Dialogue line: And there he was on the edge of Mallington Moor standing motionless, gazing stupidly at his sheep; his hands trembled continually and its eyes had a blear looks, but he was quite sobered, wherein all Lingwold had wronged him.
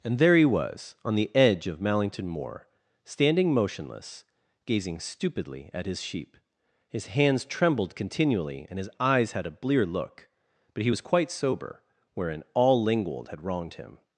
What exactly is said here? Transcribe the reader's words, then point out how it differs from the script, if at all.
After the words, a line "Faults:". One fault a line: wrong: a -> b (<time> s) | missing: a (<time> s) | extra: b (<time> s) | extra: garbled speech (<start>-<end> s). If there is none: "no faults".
And there he was on the edge of Mallington Moor standing motionless, gazing stupidly at his sheep; his hands trembled continually and his eyes had a blear look, but he was quite sober, wherein all Lingwold had wronged him.
Faults:
wrong: its -> his (8.8 s)
wrong: looks -> look (9.8 s)
wrong: sobered -> sober (11.3 s)